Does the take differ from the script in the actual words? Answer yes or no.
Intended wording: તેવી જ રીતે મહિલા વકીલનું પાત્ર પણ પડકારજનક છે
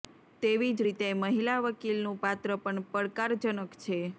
no